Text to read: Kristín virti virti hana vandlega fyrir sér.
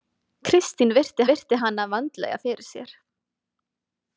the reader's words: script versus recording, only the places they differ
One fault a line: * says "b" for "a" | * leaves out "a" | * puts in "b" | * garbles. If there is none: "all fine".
all fine